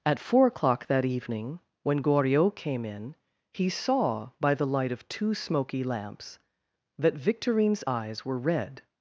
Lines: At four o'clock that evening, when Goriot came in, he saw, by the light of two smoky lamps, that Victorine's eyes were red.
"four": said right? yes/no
yes